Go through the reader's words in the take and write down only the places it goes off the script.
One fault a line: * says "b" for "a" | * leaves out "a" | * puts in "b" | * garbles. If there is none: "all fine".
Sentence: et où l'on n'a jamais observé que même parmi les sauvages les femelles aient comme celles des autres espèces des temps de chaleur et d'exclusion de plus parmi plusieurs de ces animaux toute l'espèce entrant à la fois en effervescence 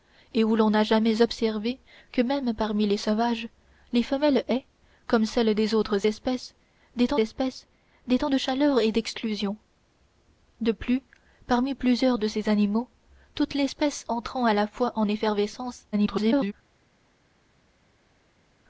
* puts in "espèces des temps"
* garbles